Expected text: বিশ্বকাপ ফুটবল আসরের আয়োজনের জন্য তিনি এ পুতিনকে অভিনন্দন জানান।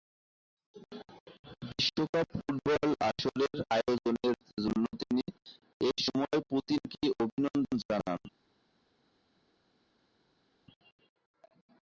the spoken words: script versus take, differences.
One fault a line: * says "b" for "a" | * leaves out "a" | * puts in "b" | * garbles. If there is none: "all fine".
* puts in "সময়"